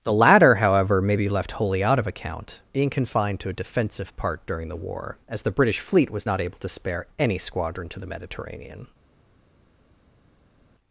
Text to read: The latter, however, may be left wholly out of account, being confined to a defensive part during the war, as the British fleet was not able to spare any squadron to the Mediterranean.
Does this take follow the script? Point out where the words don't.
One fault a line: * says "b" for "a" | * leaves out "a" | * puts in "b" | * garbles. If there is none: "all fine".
all fine